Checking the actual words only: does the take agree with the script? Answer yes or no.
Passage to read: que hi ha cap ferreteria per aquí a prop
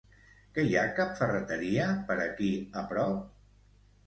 yes